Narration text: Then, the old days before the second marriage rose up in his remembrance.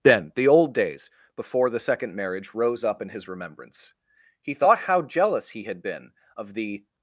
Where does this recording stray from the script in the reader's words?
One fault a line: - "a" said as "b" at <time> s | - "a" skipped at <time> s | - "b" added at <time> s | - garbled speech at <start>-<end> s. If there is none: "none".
- "He thought how jealous he had been of the" added at 4.4 s